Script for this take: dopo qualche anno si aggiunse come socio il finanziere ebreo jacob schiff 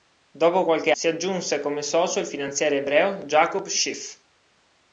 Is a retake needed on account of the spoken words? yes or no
yes